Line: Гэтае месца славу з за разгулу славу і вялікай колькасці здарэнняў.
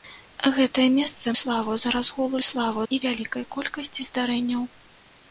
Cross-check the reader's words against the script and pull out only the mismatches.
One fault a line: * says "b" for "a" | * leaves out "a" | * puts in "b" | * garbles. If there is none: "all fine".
all fine